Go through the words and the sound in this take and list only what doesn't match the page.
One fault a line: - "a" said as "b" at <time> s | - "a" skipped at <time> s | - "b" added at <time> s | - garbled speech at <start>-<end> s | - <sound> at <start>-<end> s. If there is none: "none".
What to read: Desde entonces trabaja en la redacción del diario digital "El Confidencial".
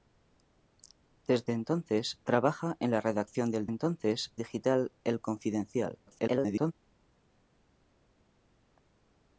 - "diario" said as "entonces" at 3.7 s
- garbled speech at 6.1-6.7 s